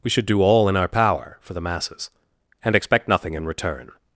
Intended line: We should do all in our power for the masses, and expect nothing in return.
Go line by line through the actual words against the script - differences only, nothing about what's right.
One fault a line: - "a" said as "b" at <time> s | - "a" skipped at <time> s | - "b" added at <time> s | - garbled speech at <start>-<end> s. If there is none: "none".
none